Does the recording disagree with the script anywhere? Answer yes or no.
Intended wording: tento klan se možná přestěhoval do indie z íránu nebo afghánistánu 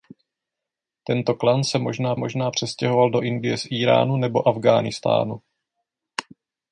yes